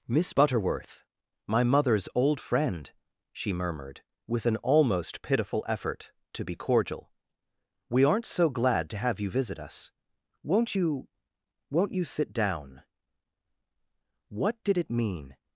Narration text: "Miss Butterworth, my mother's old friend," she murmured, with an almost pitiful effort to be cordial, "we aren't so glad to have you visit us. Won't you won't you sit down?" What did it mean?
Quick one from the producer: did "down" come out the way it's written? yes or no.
yes